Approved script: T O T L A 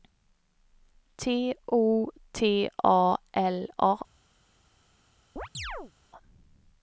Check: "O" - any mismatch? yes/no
no